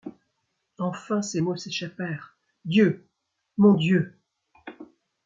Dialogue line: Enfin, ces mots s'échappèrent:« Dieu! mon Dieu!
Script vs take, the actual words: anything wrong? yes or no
no